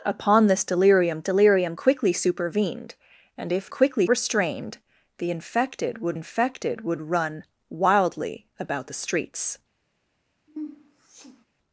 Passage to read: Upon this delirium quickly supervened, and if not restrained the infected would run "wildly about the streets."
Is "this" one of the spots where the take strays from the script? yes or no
no